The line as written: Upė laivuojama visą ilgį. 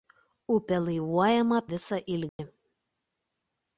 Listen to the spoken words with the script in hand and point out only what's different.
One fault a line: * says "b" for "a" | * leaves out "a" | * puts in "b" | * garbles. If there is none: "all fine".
all fine